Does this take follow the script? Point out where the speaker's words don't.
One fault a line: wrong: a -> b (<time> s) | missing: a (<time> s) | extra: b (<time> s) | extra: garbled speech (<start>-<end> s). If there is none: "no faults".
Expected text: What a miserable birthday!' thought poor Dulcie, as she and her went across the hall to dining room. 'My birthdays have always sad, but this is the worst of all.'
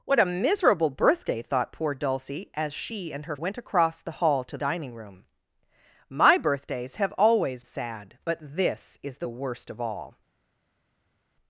no faults